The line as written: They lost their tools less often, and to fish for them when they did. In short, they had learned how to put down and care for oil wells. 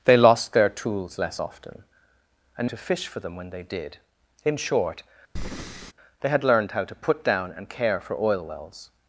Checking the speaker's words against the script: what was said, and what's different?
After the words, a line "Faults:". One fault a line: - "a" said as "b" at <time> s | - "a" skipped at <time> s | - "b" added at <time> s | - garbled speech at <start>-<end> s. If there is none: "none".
They lost their tools less often, and to fish for them when they did. In short, they had learned how to put down and care for oil wells.
Faults:
none